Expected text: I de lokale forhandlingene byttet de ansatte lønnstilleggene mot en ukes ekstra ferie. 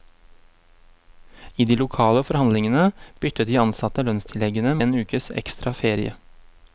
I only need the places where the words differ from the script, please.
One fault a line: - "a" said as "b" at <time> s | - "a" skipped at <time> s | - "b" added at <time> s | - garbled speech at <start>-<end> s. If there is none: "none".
- "mot" skipped at 4.7 s